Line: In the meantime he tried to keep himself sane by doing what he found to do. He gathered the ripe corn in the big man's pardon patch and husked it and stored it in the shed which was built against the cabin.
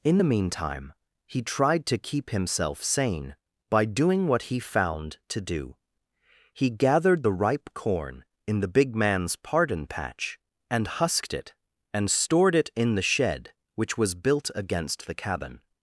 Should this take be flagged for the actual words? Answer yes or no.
no